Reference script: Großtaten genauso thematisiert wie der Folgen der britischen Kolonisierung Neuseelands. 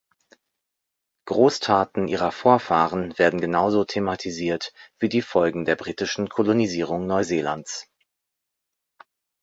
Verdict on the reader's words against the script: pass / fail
fail